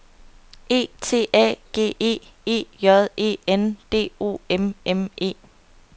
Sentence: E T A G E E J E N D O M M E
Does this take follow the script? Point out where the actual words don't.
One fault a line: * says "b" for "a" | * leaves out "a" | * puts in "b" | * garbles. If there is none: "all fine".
all fine